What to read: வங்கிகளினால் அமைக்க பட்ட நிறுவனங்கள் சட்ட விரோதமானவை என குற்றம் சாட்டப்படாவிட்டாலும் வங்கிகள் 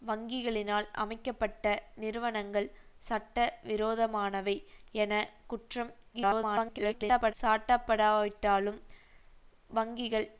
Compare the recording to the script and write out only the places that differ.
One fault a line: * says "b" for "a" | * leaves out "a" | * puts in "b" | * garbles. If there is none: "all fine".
* garbles